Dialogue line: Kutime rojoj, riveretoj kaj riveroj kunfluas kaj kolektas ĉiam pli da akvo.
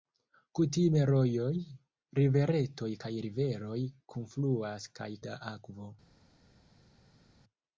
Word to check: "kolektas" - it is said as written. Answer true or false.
false